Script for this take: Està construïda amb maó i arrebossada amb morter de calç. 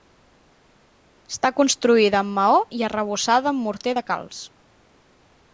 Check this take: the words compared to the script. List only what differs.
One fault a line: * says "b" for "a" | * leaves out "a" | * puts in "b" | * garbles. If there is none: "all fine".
all fine